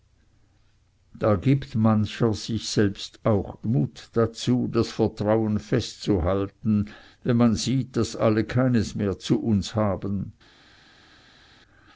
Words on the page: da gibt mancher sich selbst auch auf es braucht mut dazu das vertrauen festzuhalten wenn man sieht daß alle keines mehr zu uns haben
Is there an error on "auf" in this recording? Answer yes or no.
yes